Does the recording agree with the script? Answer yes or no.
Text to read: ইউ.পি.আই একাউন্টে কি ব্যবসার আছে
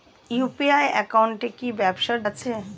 yes